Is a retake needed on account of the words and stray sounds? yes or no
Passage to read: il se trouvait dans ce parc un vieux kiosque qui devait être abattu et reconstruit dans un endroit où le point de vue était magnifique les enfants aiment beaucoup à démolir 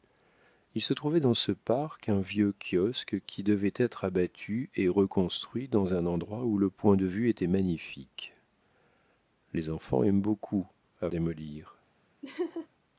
yes